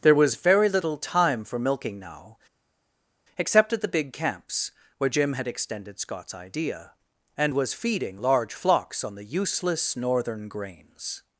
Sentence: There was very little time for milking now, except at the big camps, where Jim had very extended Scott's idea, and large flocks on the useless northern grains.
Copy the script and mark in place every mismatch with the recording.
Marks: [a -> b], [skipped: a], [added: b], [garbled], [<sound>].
There was very little time for milking now, except at the big camps, where Jim had [skipped: very] extended Scott's idea, and [added: was feeding] large flocks on the useless northern grains.